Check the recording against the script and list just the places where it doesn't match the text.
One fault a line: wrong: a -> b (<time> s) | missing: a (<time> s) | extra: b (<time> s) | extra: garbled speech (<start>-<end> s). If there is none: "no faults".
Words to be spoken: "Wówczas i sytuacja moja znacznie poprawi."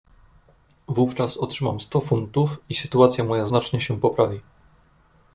extra: otrzymam sto funtów (1.4 s)
extra: się (3.8 s)